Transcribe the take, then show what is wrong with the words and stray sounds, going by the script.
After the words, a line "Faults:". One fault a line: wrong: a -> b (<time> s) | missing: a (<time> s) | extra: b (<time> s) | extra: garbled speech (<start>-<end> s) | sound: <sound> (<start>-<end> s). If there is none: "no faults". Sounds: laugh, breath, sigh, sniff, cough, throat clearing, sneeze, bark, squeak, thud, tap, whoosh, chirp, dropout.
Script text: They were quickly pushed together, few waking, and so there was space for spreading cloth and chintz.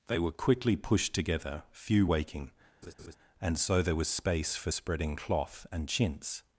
They were quickly pushed together, few waking, and so there was space for spreading cloth and chintz.
Faults:
sound: laugh (2.8-3.2 s)